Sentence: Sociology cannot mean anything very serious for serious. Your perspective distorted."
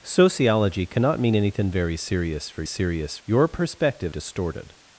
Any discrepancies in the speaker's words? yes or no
no